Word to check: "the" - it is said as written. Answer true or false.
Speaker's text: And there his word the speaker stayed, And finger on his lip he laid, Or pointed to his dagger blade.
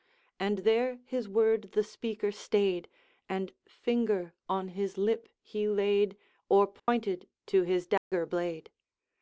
true